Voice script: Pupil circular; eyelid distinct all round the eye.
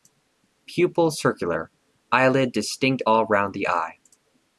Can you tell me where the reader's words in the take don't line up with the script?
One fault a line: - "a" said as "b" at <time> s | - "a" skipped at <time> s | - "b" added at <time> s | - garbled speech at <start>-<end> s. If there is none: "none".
none